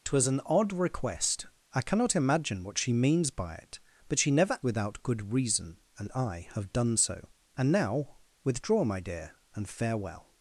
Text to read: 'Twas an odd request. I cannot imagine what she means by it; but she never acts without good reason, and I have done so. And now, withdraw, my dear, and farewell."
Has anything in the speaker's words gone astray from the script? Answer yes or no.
yes